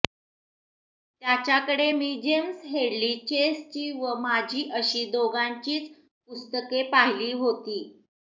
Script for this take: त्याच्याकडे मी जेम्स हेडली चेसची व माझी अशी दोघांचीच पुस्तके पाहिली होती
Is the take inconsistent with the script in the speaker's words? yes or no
no